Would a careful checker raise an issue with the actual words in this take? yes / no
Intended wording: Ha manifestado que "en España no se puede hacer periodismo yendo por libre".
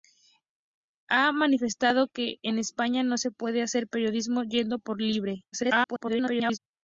yes